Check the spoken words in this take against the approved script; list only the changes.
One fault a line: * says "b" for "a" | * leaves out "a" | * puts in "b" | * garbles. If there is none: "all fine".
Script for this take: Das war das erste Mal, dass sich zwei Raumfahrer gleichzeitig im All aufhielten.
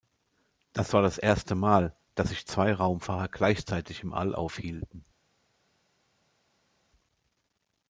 all fine